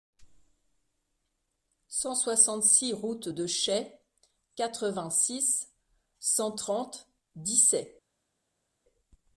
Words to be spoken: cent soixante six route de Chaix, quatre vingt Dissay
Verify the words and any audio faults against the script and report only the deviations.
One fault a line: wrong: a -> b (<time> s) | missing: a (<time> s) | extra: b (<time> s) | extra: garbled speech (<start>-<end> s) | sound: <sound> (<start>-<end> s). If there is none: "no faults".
extra: six cent trente (5.1 s)